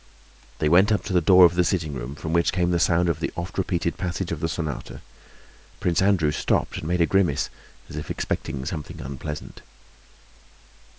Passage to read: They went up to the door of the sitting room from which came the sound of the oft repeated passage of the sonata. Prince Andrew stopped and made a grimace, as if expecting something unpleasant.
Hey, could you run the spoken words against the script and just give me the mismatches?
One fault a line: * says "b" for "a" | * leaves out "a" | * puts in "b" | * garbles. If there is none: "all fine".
all fine